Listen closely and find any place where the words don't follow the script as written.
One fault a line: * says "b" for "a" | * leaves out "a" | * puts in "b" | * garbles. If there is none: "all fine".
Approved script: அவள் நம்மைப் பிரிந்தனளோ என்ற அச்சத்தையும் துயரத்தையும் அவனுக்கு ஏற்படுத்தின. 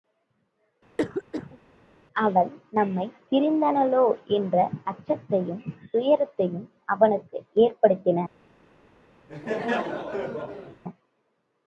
all fine